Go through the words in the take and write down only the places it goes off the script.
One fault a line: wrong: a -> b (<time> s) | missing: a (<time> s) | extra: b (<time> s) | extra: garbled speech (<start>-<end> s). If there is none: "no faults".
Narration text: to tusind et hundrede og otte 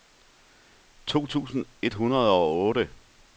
no faults